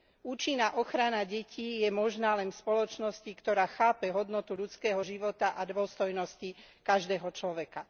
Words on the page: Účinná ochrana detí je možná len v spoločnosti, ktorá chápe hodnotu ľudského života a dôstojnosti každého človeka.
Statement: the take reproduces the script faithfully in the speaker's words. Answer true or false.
true